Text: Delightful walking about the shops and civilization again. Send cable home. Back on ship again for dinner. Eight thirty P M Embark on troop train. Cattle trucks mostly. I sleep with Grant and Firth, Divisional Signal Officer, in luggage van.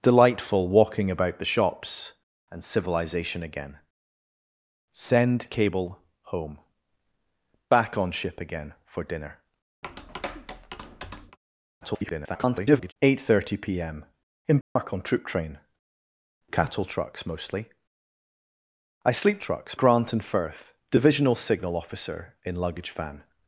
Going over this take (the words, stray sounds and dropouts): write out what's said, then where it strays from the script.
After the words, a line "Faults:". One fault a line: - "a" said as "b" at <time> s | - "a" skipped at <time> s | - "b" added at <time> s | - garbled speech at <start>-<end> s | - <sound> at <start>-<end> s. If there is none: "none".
Delightful walking about the shops and civilization again. Send cable home. Back on ship again for dinner. [garbled] Eight thirty P M Embark on troop train. Cattle trucks mostly. I sleep trucks Grant and Firth, Divisional Signal Officer, in luggage van.
Faults:
- tap at 9.8-11.4 s
- garbled speech at 11.8-12.9 s
- dropout at 14.6-14.8 s
- "with" said as "trucks" at 19.4 s